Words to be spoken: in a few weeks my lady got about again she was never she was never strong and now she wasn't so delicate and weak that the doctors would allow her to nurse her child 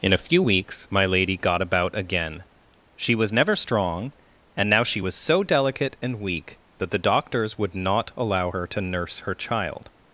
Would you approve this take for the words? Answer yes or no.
no